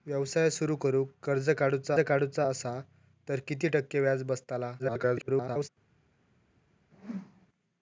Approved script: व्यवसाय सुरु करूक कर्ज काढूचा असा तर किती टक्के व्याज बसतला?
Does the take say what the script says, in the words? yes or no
no